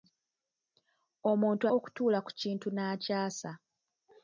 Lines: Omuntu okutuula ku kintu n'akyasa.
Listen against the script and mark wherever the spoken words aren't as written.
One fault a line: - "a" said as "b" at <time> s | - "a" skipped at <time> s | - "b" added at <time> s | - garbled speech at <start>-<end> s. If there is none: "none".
none